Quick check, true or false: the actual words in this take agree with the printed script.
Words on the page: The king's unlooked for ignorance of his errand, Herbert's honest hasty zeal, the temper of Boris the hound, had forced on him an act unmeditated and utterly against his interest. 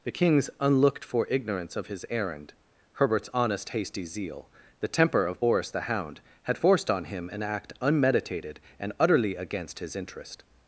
true